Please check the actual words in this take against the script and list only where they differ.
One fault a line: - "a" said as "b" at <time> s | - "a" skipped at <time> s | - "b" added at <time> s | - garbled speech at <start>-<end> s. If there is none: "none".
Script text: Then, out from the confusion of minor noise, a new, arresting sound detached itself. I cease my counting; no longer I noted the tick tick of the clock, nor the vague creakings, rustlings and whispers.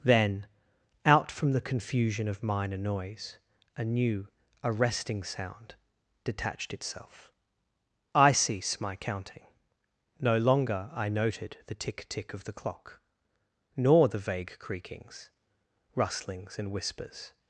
none